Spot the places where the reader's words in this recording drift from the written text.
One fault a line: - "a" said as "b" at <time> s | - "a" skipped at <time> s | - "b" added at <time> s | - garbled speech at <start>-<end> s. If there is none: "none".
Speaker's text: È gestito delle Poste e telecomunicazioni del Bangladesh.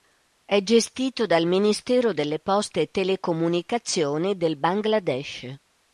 - "dal Ministero" added at 1.3 s